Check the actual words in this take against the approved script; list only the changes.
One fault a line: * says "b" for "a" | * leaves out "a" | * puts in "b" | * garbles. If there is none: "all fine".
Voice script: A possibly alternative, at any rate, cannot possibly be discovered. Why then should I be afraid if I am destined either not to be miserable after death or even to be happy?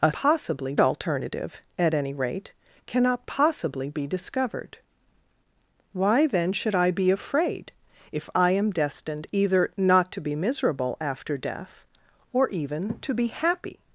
all fine